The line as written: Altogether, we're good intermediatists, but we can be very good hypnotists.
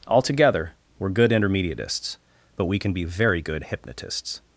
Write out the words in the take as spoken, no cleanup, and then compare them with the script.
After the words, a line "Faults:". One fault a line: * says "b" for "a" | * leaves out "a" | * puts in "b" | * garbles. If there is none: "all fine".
Altogether, we're good intermediatists, but we can be very good hypnotists.
Faults:
all fine